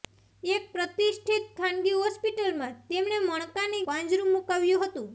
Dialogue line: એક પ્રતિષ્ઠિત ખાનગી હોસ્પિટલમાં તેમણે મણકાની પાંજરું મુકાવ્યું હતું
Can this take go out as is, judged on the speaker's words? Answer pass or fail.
pass